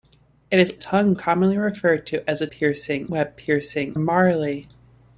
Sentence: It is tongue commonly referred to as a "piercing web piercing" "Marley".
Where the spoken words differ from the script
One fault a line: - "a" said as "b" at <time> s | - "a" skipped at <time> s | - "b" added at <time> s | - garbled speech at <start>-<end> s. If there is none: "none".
none